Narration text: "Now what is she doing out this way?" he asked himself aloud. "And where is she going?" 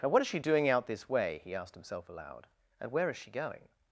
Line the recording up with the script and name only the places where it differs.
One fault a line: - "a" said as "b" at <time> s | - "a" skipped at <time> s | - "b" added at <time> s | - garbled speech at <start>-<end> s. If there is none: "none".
none